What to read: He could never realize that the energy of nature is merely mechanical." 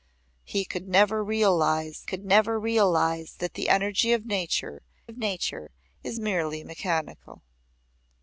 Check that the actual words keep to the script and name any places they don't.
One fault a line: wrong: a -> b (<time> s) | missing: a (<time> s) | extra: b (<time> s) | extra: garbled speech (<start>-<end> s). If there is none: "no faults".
extra: could never realize (2.0 s)
extra: of nature (5.1 s)